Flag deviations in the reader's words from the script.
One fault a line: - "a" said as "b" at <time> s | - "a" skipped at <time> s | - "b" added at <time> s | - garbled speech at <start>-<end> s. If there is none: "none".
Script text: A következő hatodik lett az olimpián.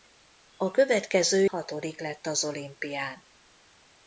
none